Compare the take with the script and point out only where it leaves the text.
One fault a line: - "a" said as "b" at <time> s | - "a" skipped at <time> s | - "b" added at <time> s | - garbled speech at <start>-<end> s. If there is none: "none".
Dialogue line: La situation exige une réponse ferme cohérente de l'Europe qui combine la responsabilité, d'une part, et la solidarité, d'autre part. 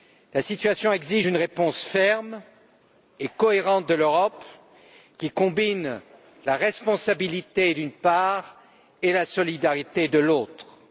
- "et" added at 3.2 s